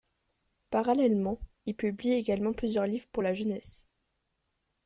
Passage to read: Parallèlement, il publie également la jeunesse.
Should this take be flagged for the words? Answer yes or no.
yes